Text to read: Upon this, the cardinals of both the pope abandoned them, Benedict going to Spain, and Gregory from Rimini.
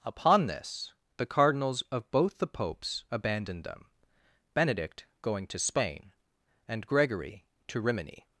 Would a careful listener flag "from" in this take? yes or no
yes